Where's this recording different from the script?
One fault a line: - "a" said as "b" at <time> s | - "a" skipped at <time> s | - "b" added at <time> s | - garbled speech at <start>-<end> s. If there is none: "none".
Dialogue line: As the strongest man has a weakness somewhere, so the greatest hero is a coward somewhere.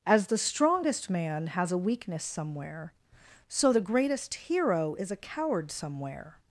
none